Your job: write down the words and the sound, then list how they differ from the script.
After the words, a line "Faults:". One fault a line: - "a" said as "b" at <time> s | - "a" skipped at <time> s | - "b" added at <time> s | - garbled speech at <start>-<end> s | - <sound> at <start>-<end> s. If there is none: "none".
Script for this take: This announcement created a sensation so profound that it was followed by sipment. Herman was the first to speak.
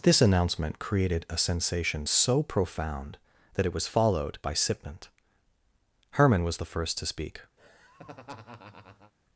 This announcement created a sensation so profound that it was followed by sipment. Herman was the first to speak.
Faults:
- laugh at 7.6-9.1 s